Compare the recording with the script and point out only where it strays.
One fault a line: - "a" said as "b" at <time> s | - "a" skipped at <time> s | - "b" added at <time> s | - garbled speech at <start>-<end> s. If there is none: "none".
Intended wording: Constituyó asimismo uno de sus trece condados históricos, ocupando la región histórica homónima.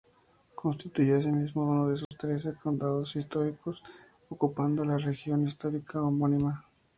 none